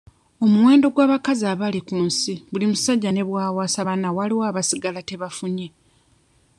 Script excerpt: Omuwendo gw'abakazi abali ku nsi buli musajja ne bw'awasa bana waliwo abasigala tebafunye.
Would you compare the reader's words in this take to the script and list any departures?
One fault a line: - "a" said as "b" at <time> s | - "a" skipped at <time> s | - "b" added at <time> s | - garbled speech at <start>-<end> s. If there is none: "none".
none